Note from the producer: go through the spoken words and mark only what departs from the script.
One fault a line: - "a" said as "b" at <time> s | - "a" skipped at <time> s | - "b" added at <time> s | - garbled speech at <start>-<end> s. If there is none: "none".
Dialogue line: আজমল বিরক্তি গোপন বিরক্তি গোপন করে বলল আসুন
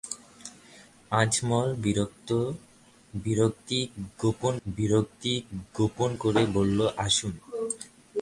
none